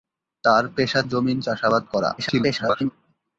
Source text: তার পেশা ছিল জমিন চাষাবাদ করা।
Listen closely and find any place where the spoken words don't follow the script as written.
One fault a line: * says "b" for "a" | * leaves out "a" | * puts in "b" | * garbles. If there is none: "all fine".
* leaves out "ছিল"
* garbles